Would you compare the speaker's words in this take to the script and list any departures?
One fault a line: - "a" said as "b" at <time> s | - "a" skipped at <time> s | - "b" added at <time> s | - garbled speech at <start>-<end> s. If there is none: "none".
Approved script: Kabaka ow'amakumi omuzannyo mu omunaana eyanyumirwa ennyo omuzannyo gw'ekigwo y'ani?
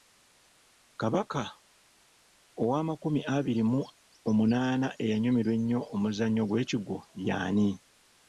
- "omuzannyo" said as "abiri" at 3.4 s